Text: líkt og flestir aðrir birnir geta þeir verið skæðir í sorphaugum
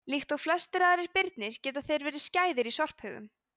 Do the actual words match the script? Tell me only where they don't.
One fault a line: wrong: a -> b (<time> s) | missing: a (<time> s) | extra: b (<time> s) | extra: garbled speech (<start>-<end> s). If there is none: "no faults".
no faults